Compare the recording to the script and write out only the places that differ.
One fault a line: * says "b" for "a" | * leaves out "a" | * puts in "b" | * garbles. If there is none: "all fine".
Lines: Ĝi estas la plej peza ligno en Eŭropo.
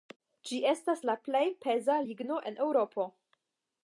all fine